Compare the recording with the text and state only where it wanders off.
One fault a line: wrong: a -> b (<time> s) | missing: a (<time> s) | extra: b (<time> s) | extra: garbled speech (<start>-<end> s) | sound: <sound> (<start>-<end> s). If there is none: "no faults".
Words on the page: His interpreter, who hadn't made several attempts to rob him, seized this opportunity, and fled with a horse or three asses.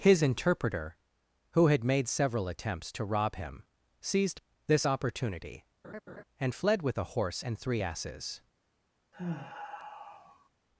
wrong: hadn't -> had (1.7 s)
sound: laugh (5.8-6.2 s)
wrong: or -> and (7.4 s)
sound: sigh (9.1-10.5 s)